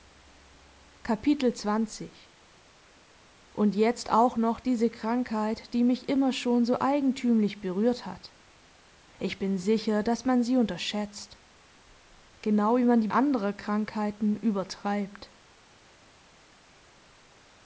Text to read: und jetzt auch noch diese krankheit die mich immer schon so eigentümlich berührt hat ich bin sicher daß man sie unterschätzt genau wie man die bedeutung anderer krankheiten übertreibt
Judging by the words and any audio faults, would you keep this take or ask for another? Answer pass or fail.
fail